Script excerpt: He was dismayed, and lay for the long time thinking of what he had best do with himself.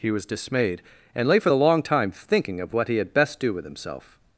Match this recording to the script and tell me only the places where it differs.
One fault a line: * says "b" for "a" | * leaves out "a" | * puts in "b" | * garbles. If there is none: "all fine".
all fine